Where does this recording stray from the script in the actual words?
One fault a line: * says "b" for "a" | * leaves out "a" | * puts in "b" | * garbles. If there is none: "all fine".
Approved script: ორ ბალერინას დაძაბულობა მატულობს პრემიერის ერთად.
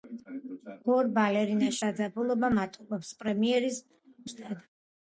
all fine